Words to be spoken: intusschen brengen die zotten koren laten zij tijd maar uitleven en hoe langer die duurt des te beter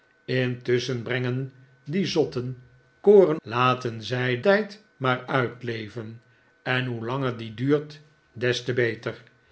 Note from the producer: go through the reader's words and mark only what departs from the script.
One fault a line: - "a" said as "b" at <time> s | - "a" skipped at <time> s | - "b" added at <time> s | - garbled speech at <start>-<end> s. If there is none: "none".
none